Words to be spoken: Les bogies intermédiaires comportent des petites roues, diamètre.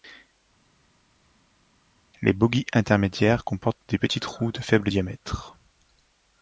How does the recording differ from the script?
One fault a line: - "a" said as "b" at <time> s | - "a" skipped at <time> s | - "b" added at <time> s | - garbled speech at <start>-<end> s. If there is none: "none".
- "de faible" added at 4.5 s